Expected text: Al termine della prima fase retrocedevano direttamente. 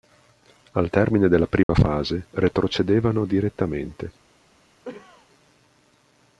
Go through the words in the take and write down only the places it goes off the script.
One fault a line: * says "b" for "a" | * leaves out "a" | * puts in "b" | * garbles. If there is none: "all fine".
all fine